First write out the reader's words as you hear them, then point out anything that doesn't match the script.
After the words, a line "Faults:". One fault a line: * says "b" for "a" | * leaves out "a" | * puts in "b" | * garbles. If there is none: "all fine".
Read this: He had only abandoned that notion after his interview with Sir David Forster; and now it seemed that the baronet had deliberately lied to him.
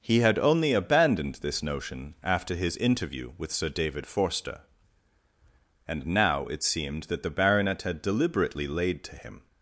He had only abandoned this notion after his interview with Sir David Forster; and now it seemed that the baronet had deliberately laid to him.
Faults:
* says "this" for "that"
* says "laid" for "lied"